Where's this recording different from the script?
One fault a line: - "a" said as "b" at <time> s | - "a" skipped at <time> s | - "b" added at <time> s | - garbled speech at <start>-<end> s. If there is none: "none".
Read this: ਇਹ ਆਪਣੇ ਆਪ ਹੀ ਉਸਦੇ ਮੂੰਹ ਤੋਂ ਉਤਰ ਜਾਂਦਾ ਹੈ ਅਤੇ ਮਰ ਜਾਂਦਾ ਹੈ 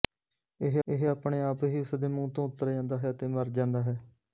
- "ਇਹ" added at 0.9 s